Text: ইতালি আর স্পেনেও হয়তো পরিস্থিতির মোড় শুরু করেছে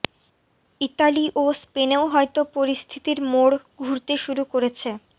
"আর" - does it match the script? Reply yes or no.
no